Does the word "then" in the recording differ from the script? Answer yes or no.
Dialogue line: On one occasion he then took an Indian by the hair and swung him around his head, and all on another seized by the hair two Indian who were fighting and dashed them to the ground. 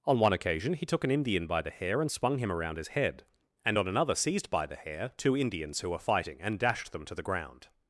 yes